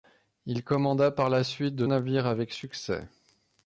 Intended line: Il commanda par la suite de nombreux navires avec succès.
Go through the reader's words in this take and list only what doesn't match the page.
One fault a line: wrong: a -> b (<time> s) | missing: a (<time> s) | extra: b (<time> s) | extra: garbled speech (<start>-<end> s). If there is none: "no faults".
missing: nombreux (1.9 s)